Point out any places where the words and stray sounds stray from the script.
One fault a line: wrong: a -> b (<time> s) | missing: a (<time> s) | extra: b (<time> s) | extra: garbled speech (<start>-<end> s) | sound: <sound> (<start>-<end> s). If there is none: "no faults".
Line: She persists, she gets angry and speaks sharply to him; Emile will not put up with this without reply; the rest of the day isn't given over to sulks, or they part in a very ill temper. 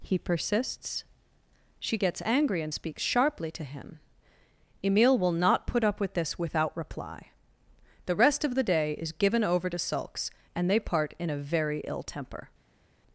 wrong: She -> He (0.0 s)
wrong: isn't -> is (9.0 s)
wrong: or -> and (10.5 s)